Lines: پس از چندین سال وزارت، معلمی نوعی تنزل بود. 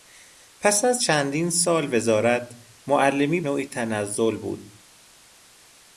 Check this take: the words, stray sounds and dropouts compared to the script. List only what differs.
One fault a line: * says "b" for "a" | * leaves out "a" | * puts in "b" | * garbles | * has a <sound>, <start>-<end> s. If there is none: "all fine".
all fine